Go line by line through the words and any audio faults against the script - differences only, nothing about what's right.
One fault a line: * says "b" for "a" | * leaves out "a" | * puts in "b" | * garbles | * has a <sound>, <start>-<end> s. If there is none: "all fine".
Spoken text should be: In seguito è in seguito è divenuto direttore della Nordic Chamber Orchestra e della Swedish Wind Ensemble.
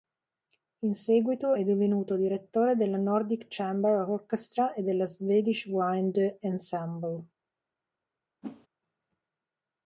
* leaves out "in seguito è"
* has a whoosh, 8.4-8.7 s